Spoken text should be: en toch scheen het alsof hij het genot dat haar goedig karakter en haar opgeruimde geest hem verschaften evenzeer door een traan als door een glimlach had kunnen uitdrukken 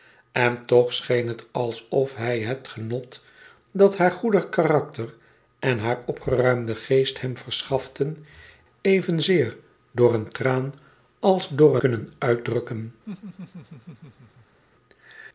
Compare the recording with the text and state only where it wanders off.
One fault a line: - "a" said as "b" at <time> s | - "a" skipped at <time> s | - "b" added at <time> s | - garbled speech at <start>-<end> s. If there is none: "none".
- "een glimlach had" skipped at 11.8 s